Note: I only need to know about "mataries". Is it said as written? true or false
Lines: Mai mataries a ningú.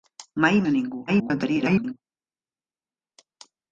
false